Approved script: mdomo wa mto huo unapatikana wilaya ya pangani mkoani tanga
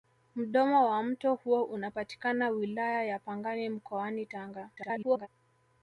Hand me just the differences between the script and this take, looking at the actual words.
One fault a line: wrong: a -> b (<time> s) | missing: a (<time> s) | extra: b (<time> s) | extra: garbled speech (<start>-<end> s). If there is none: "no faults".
extra: garbled speech (4.8-5.3 s)